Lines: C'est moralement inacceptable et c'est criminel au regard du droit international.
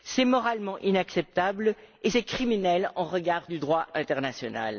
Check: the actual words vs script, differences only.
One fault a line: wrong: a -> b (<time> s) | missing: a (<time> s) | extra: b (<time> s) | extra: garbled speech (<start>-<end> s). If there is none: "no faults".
no faults